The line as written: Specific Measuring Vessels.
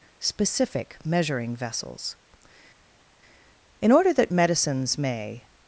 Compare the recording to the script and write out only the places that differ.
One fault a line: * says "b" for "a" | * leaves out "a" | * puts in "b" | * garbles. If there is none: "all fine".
* puts in "In order that Medicines may"